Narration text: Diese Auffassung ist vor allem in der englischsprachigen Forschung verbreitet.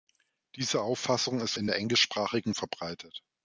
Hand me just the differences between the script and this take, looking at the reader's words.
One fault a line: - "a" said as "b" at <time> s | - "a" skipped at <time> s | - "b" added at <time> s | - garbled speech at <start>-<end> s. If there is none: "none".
- "vor allem" skipped at 1.5 s
- "Forschung" skipped at 2.5 s